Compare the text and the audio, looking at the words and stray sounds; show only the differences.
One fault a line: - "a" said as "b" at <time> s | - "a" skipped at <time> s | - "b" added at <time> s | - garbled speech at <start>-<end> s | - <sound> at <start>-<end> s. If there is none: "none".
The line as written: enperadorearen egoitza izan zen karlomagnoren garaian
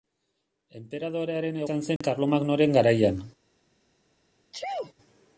- "egoitza" skipped at 1.6 s
- dropout at 2.0-2.0 s
- sneeze at 4.5-4.9 s